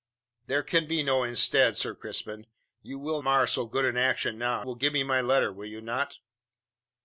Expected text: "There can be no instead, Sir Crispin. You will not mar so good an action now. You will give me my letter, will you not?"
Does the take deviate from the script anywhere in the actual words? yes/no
yes